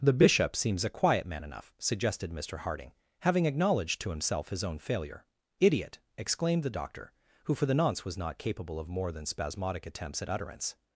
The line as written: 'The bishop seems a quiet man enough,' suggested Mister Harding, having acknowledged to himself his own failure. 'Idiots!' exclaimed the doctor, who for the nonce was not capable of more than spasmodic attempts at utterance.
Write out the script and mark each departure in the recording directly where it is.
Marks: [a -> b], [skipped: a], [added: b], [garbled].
'The bishop seems a quiet man enough,' suggested Mister Harding, having acknowledged to himself his own failure. ['Idiots!' -> Idiot] exclaimed the doctor, who for the nonce was not capable of more than spasmodic attempts at utterance.